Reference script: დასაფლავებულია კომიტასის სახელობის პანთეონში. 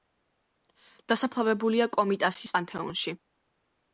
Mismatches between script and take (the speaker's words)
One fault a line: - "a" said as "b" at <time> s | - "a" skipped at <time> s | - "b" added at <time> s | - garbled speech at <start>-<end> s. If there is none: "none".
- "სახელობის" skipped at 2.6 s